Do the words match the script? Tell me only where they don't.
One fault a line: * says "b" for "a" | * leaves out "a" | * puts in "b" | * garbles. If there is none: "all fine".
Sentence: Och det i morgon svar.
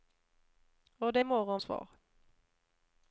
all fine